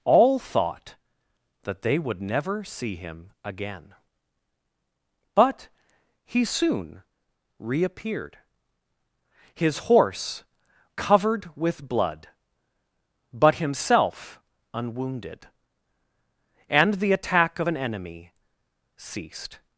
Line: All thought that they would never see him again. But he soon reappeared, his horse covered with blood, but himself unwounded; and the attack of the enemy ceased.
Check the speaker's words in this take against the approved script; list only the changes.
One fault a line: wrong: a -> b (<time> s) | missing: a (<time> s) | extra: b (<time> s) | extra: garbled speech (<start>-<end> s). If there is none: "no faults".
wrong: the -> an (17.7 s)